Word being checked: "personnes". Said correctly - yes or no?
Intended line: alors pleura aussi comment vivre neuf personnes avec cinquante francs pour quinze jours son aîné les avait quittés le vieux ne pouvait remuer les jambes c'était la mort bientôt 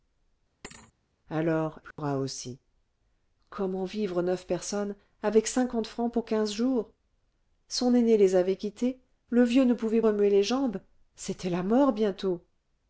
yes